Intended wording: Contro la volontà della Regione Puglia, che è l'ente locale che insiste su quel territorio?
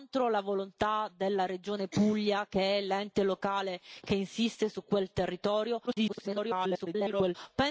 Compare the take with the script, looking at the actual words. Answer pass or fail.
fail